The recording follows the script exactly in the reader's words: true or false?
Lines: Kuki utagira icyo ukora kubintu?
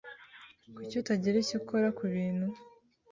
true